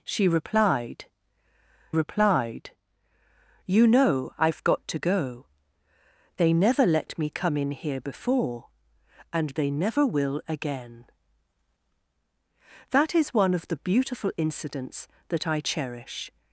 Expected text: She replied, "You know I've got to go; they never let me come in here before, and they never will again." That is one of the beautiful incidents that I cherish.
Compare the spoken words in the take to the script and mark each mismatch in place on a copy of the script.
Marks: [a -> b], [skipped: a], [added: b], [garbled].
She replied, [added: replied] "You know I've got to go; they never let me come in here before, and they never will again." That is one of the beautiful incidents that I cherish.